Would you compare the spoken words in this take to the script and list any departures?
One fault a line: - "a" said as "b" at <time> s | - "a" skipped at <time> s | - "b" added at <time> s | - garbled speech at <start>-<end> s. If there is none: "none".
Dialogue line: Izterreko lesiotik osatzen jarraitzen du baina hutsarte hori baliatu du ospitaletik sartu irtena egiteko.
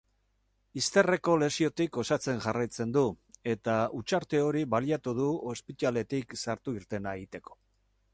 - "baina" said as "eta" at 3.5 s